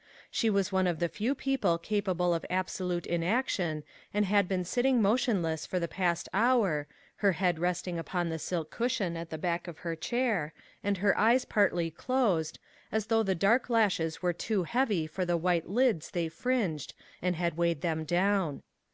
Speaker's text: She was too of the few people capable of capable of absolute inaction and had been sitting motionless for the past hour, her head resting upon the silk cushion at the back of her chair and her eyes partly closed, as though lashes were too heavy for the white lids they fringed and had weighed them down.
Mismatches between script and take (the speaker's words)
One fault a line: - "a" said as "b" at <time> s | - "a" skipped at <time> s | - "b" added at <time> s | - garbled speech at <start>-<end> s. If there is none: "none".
- "too" said as "one" at 0.7 s
- "capable of" skipped at 2.5 s
- "the dark" added at 13.2 s